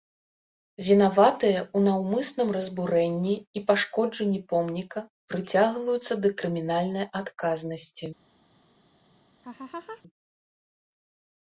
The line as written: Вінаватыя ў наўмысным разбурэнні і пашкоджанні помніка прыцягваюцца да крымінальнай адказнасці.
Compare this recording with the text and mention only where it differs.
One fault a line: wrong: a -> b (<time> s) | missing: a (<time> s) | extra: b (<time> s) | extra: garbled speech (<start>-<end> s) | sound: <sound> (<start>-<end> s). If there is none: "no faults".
sound: laugh (9.4-10.0 s)